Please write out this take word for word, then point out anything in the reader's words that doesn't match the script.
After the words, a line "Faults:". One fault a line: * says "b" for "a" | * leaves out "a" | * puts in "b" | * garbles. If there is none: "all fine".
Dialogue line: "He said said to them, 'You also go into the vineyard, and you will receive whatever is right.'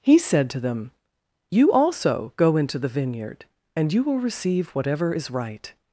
"He said to them, 'You also go into the vineyard, and you will receive whatever is right.'
Faults:
* leaves out "said"